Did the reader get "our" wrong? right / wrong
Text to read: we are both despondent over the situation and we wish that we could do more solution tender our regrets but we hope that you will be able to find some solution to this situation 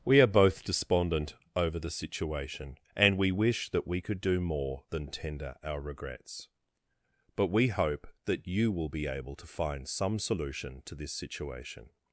right